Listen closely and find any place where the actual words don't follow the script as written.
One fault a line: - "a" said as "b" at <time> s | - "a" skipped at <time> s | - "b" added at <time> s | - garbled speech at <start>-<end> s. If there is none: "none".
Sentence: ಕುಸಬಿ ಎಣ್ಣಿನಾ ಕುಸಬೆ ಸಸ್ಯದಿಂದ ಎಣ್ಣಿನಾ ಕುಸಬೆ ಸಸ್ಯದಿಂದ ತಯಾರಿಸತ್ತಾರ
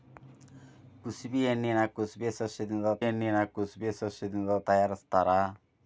none